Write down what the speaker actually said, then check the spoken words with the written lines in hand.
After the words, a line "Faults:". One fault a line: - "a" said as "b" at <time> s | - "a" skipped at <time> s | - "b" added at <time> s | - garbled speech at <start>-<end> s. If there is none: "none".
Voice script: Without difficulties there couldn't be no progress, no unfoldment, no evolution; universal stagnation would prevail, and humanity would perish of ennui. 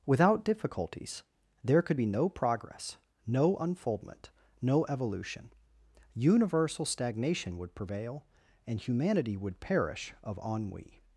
Without difficulties there could be no progress, no unfoldment, no evolution; universal stagnation would prevail, and humanity would perish of ennui.
Faults:
- "couldn't" said as "could" at 1.8 s